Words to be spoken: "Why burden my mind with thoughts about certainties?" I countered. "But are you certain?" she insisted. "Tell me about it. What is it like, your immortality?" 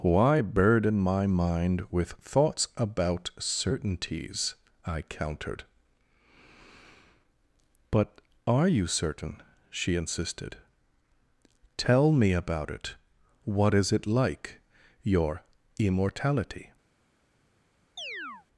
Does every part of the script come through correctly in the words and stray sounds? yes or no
no